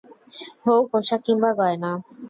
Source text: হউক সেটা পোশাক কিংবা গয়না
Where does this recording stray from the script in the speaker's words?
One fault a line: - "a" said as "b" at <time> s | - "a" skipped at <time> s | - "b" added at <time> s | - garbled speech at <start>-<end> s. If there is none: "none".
- "সেটা" skipped at 0.8 s